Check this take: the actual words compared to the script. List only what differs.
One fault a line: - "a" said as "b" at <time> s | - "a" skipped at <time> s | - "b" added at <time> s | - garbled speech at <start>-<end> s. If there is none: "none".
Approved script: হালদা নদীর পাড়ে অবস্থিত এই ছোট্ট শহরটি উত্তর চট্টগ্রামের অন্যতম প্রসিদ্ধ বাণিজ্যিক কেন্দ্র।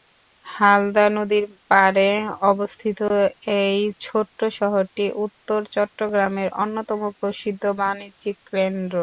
none